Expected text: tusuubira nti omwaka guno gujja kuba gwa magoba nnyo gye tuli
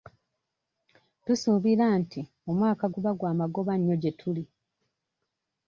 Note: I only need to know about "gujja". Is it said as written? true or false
false